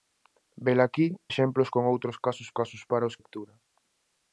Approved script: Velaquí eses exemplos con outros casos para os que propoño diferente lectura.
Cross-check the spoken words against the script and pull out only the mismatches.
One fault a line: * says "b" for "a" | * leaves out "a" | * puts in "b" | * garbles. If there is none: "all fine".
* leaves out "eses"
* puts in "casos"
* leaves out "que propoño diferente"